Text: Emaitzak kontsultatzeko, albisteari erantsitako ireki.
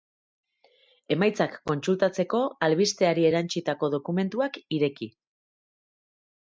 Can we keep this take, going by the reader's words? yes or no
no